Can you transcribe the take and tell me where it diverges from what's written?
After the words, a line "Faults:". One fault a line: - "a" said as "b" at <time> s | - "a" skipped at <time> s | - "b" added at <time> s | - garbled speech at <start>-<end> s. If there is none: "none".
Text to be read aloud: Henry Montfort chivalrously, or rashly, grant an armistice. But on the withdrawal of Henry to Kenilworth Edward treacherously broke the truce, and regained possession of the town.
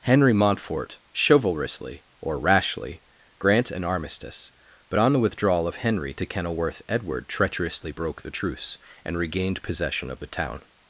Henry Montfort chivalrously, or rashly, grant an armistice. But on the withdrawal of Henry to Kenilworth Edward treacherously broke the truce, and regained possession of the town.
Faults:
none